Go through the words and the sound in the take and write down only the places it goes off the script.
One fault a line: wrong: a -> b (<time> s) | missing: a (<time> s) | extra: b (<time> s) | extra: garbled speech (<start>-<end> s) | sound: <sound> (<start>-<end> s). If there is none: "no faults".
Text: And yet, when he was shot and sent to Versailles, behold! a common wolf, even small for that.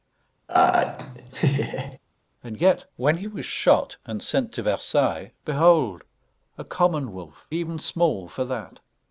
sound: laugh (0.5-2.0 s)